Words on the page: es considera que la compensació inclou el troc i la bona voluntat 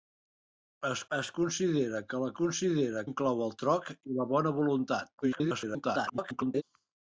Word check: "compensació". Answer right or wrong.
wrong